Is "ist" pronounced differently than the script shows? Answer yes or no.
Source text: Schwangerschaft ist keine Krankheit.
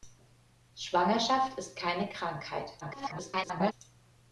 no